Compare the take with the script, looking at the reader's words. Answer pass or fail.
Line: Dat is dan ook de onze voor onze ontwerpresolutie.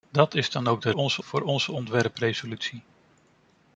pass